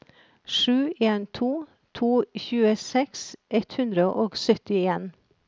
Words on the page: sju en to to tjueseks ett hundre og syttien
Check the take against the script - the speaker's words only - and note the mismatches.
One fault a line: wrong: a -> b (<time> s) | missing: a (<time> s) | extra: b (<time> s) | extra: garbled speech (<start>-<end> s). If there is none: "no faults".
no faults